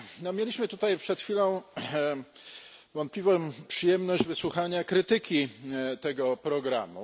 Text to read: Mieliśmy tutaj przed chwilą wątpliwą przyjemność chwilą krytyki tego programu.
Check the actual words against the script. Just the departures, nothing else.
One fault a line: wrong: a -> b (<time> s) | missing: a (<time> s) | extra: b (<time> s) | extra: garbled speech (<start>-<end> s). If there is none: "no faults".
wrong: chwilą -> wysłuchania (4.2 s)